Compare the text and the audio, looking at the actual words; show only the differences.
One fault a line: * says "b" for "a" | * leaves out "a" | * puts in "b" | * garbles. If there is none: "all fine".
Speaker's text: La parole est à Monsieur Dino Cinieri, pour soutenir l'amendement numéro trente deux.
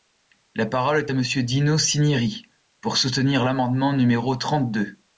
all fine